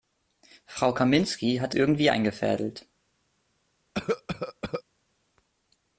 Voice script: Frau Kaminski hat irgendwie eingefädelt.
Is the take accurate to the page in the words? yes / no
yes